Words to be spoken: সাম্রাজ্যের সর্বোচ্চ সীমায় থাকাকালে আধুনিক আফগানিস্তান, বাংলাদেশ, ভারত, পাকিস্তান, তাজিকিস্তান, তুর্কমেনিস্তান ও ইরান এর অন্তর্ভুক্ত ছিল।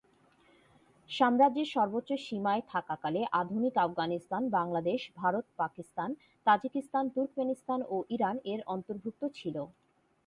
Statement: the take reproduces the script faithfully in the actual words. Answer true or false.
true